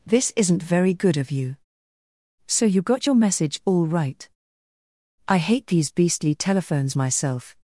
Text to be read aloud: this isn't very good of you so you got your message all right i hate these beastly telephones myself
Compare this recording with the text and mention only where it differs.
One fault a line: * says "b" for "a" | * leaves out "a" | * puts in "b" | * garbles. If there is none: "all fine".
all fine